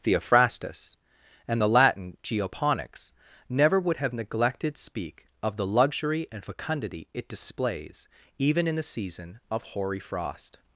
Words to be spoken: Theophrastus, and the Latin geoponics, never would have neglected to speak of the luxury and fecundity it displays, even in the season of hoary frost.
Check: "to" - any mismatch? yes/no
yes